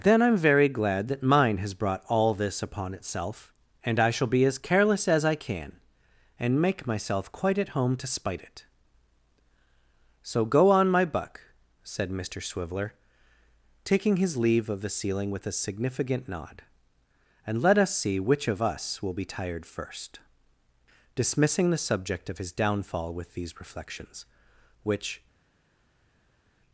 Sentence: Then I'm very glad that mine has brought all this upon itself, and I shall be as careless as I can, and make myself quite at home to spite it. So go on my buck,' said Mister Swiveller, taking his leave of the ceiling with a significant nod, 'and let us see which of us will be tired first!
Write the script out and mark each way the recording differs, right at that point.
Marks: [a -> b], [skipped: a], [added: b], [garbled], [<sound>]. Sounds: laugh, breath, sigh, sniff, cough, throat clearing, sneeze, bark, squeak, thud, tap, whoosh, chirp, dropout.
Then I'm very glad that mine has brought all this upon itself, and I shall be as careless as I can, and make myself quite at home to spite it. So go on my buck,' said Mister Swiveller, taking his leave of the ceiling with a significant nod, 'and let us see which of us will be tired first! [added: Dismissing the subject of his downfall with these reflections which]